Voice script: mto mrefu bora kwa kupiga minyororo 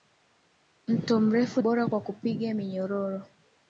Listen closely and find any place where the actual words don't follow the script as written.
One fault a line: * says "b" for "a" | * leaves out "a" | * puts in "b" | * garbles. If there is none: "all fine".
all fine